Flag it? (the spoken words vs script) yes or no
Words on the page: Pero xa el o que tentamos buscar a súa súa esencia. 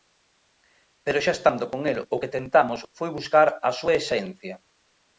yes